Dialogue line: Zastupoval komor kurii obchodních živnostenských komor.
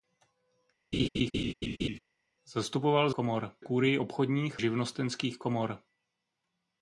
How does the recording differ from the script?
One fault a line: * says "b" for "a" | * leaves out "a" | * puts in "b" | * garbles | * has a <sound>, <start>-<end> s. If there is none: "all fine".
* has a laugh, 0.9-2.0 s